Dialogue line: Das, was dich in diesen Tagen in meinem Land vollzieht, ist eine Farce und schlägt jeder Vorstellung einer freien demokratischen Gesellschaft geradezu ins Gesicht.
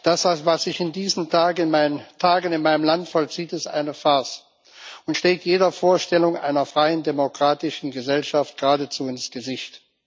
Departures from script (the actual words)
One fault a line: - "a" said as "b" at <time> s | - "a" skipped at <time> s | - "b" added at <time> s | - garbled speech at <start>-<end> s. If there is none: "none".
- "dich" said as "sich" at 0.6 s